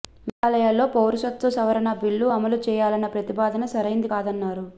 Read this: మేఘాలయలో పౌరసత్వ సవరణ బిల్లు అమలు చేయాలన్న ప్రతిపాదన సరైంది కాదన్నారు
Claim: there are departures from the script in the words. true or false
false